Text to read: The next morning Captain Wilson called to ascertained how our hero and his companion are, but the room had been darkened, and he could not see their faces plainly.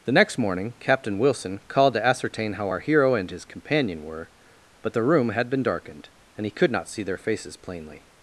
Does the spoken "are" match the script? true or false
false